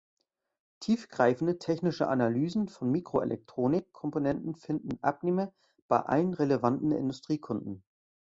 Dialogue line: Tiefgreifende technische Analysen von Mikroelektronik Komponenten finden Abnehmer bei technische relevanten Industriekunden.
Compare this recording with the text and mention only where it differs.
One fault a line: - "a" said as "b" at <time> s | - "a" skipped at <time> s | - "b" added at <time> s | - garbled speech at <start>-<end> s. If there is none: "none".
- "technische" said as "allen" at 6.0 s